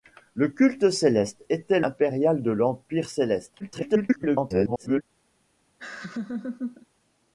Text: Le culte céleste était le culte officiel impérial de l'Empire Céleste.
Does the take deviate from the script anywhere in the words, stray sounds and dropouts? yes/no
yes